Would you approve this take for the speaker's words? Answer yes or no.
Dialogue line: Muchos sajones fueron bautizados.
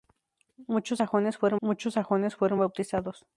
no